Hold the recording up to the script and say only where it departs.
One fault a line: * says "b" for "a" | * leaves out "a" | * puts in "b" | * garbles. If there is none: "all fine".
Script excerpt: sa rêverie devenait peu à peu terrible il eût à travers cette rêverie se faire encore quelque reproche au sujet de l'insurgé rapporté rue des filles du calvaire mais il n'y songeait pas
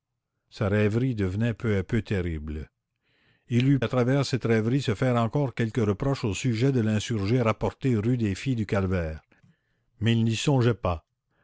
all fine